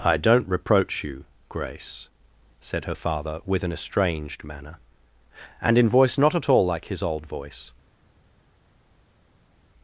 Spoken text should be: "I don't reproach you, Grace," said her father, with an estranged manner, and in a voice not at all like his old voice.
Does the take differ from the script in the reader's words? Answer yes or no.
yes